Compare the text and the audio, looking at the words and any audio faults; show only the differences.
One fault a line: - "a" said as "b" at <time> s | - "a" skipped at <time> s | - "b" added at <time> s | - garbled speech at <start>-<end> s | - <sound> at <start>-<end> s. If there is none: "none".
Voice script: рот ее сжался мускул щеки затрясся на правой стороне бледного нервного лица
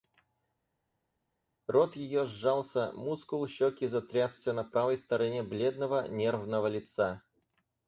none